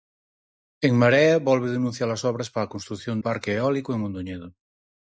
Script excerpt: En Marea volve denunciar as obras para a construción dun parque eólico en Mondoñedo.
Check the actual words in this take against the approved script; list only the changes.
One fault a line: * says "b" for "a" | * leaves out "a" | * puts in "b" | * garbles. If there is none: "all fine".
* leaves out "dun"